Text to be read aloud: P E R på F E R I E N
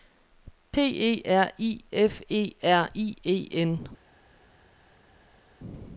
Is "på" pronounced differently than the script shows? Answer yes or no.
yes